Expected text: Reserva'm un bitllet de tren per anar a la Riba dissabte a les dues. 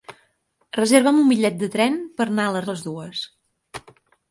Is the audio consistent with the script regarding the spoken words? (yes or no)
no